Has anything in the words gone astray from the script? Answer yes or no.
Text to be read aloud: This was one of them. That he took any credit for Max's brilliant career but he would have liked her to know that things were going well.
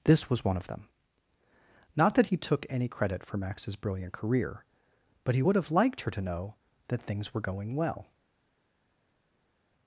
yes